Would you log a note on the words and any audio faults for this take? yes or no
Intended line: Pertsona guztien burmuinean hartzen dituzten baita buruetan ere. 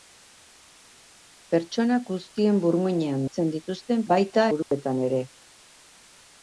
yes